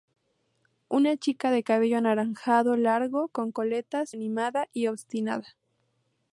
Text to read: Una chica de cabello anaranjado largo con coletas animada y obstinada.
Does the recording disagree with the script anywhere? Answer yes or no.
no